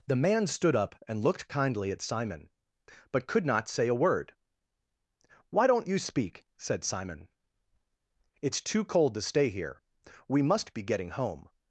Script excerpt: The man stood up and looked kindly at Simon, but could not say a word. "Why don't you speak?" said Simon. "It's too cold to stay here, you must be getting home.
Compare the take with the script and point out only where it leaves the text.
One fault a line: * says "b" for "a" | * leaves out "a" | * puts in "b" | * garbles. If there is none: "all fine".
* says "we" for "you"